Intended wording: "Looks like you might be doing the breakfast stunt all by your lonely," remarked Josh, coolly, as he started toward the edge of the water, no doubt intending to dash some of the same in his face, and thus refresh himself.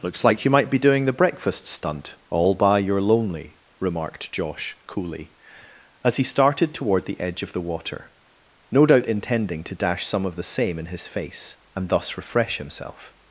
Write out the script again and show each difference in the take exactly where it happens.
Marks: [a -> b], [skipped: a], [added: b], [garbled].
"Looks like you might be doing the breakfast stunt all by your lonely," remarked Josh, coolly, as he started toward the edge of the water, no doubt intending to dash some of the same in his face, and thus refresh himself.